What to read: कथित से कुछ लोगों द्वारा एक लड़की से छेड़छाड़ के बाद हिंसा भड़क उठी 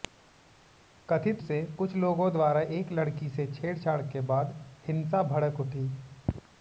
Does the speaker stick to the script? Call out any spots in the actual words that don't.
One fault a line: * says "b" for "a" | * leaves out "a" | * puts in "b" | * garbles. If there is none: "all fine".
all fine